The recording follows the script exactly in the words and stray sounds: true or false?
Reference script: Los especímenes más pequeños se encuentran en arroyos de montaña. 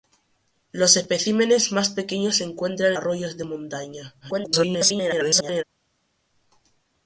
false